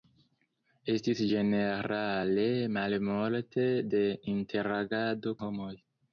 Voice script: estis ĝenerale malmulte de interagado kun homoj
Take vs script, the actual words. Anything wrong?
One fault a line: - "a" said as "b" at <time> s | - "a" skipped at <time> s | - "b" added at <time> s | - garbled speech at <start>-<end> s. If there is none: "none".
- "kun" skipped at 5.4 s